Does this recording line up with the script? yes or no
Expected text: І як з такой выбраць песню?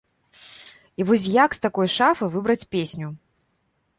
no